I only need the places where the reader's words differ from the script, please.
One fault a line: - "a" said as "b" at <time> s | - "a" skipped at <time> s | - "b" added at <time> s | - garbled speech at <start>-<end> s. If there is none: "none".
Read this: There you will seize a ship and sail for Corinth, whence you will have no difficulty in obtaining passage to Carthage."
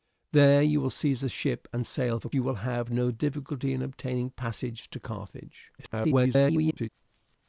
- "Corinth whence" skipped at 2.3 s
- garbled speech at 5.8-6.9 s